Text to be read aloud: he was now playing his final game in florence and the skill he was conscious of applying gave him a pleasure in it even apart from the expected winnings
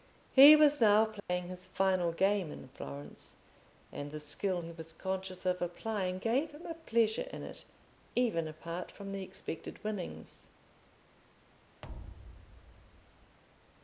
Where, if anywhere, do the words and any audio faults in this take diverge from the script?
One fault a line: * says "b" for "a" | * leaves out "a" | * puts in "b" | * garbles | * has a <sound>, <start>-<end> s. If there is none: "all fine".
* has a dropout, 1.2-1.3 s
* has a thud, 11.8-13.4 s